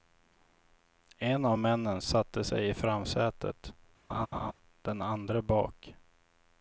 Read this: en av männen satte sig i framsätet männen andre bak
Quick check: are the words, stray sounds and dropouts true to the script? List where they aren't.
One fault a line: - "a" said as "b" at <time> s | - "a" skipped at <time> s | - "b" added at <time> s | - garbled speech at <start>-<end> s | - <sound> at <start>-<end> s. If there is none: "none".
- laugh at 4.1-4.5 s
- "männen" said as "den" at 4.8 s